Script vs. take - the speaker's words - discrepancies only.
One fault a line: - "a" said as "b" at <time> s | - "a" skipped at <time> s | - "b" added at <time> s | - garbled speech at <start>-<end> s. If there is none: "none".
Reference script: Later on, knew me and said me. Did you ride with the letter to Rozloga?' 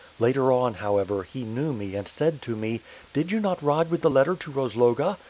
- "however he" added at 0.7 s
- "to" added at 2.4 s
- "not" added at 3.4 s